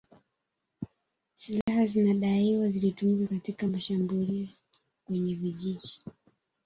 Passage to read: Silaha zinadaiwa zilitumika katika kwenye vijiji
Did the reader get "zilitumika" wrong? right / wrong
right